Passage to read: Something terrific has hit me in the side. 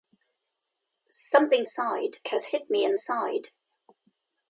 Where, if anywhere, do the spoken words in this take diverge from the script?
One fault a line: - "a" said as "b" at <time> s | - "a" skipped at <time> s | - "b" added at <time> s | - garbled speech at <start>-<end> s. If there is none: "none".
- "terrific" said as "side" at 1.6 s
- "the" skipped at 2.9 s